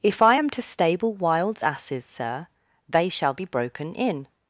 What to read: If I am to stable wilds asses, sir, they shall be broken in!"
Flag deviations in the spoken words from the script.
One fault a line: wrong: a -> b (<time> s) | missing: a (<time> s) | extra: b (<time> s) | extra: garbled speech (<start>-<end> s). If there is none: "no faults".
no faults